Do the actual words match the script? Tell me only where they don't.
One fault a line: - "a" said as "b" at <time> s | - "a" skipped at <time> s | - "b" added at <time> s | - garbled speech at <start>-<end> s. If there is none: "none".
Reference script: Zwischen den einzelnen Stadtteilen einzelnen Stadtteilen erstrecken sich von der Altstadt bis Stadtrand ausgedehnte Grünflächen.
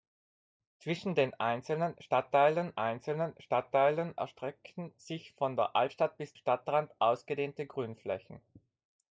none